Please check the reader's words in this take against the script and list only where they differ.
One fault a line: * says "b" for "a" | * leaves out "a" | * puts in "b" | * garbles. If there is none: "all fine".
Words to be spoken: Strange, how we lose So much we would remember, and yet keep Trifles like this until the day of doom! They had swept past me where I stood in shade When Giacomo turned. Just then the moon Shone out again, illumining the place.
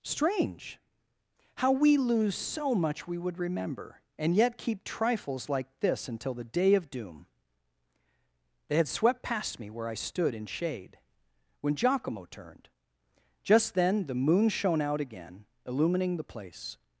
all fine